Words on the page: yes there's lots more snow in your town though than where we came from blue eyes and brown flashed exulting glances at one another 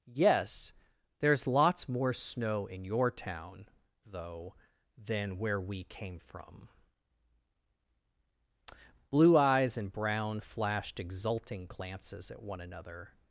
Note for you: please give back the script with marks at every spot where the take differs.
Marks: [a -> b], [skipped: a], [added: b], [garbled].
yes there's lots more snow in your town though than where we came from blue eyes and brown flashed exulting glances at one another